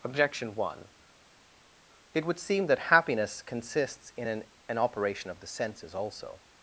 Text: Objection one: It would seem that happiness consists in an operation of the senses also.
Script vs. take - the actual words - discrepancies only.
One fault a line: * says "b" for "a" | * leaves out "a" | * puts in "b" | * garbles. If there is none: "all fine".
* puts in "an"